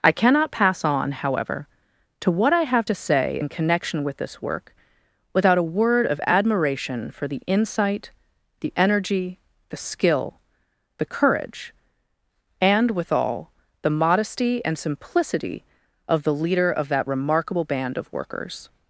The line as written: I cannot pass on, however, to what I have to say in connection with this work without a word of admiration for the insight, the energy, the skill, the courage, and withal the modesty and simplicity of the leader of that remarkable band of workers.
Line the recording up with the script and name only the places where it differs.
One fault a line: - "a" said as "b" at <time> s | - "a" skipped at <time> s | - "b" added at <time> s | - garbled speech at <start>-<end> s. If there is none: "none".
none